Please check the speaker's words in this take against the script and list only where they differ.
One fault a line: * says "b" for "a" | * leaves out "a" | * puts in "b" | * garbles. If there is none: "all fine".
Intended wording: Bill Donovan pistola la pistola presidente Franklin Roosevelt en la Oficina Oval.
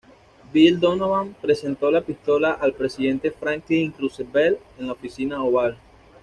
* says "presentó" for "pistola"
* puts in "al"